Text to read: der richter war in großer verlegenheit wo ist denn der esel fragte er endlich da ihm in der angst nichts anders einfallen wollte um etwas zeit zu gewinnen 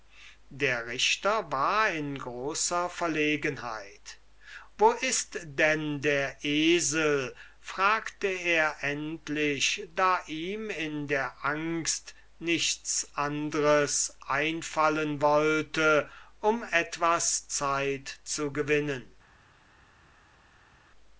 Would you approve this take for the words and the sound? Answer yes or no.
yes